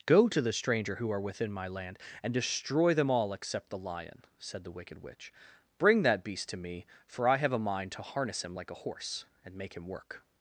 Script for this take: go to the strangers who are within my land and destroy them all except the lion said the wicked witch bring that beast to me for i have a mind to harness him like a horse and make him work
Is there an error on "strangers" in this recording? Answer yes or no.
yes